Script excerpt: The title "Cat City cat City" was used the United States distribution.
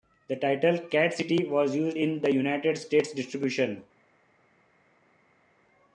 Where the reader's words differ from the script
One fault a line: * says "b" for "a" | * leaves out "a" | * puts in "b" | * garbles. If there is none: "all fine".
* leaves out "cat City"
* puts in "in"